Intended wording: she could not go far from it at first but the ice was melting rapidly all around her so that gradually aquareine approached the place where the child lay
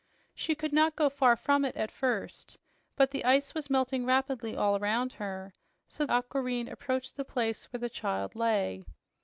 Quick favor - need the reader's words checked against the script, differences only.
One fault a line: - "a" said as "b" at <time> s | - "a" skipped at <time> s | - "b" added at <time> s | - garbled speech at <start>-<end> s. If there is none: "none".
- "that gradually" skipped at 6.1 s